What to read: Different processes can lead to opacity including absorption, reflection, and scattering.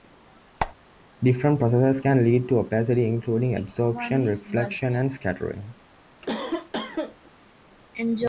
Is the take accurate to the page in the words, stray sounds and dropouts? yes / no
no